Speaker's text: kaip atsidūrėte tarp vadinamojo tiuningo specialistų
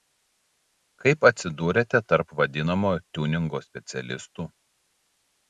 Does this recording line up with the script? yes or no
yes